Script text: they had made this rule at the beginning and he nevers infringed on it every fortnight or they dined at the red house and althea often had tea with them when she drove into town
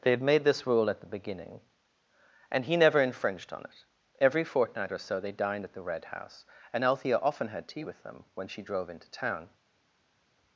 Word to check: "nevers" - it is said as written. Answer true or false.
false